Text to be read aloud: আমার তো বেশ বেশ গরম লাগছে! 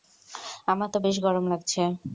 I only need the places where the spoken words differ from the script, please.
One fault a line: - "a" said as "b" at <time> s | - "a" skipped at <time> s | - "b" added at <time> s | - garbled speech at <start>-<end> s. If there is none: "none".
- "বেশ" skipped at 1.2 s